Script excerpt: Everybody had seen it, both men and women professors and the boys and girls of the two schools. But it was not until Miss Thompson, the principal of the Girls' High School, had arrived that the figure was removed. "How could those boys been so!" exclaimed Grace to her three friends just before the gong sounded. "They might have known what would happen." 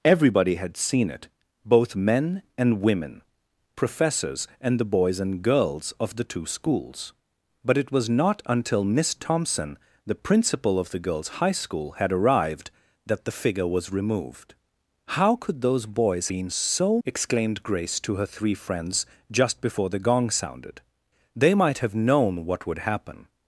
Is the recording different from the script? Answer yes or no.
no